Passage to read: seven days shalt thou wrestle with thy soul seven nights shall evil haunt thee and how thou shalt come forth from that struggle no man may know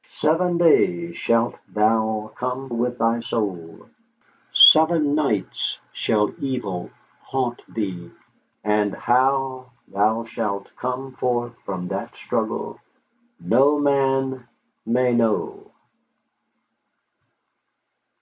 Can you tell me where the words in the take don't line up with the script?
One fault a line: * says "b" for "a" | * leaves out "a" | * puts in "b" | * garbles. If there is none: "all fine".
* says "come" for "wrestle"